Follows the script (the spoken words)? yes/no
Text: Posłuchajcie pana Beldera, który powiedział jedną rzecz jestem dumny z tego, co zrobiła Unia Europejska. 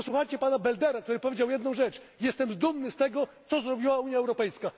yes